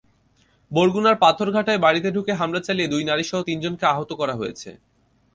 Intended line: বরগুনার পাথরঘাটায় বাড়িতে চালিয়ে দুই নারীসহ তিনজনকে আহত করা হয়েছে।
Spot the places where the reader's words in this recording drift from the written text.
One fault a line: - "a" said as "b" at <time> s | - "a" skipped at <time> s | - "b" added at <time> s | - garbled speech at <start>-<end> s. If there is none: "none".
- "ঢুকে হামলা" added at 2.1 s